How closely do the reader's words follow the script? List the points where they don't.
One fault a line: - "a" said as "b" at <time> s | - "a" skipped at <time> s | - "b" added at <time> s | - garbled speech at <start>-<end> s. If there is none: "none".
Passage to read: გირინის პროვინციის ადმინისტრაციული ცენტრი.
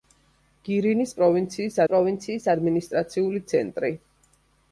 - "პროვინციის" added at 1.9 s